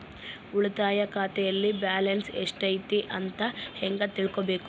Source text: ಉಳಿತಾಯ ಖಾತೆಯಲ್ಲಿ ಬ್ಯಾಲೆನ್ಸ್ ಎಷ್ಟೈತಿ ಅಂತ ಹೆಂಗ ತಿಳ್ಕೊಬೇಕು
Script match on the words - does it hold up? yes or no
yes